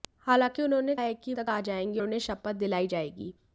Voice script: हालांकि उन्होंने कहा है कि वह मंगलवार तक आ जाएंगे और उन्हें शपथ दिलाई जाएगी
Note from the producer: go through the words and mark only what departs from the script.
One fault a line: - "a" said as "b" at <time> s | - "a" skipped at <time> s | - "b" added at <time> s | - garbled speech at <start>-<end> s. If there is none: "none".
- "कहा" skipped at 0.9 s
- "वह मंगलवार" skipped at 1.3 s
- "और" skipped at 2.0 s